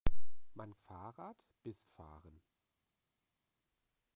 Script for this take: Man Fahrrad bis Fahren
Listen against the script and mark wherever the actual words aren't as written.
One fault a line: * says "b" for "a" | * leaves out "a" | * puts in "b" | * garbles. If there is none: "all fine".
all fine